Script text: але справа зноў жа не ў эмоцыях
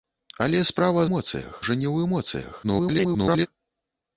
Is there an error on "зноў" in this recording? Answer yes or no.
yes